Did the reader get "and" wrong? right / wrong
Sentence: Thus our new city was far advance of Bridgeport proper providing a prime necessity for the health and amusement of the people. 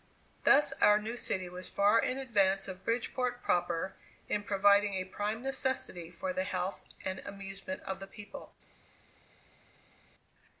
right